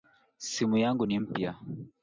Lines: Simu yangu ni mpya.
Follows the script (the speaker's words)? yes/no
yes